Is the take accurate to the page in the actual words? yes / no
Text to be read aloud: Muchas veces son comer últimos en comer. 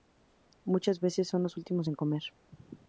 no